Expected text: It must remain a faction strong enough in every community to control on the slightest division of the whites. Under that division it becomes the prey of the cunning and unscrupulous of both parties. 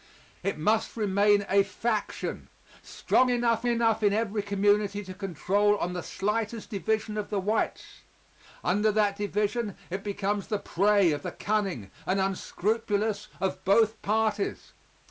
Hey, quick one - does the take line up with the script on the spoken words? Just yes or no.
no